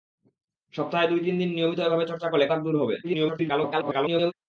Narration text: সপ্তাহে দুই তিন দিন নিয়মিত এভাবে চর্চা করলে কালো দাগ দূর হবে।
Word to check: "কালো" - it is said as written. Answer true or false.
false